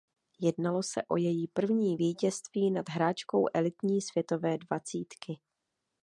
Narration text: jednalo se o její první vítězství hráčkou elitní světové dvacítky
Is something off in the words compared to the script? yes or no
yes